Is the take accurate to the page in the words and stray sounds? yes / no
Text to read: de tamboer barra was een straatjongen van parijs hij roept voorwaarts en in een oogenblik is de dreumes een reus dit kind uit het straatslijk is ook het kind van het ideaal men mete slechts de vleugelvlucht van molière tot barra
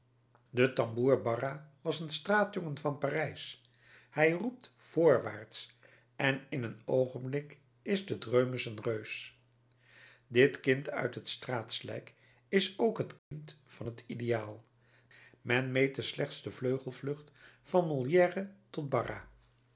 no